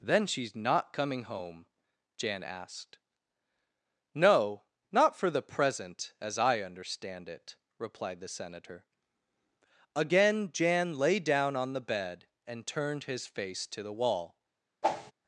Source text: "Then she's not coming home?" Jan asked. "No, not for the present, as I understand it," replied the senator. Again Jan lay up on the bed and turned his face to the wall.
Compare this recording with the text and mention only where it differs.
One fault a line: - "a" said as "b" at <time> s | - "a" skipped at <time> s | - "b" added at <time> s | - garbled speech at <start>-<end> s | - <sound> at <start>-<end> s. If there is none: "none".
- "up" said as "down" at 11.2 s
- whoosh at 14.8-15.1 s